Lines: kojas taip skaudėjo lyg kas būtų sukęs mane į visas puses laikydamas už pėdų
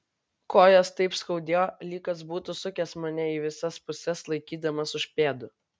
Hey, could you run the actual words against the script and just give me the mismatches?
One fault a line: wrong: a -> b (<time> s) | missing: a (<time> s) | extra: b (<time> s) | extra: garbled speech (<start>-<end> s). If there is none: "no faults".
no faults